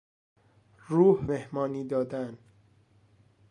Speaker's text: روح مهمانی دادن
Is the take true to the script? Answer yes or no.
yes